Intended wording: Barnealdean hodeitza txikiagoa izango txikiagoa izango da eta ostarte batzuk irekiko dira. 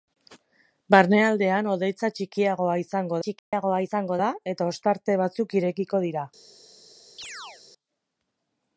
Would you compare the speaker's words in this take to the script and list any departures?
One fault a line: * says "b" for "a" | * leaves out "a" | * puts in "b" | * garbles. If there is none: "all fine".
all fine